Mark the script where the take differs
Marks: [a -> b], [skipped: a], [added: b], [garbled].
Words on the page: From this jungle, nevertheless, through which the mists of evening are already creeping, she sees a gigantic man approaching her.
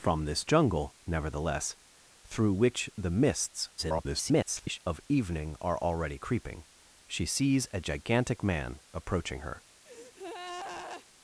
From this jungle, nevertheless, through which the mists [garbled] of evening are already creeping, she sees a gigantic man approaching her.